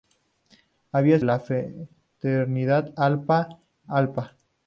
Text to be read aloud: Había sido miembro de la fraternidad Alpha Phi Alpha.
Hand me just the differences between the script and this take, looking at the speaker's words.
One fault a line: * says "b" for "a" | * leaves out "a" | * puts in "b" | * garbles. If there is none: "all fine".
* leaves out "sido miembro de"
* leaves out "Phi"